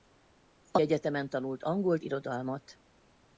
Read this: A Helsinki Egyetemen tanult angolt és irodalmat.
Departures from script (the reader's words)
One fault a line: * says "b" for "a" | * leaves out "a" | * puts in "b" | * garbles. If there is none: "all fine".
* leaves out "Helsinki"
* leaves out "és"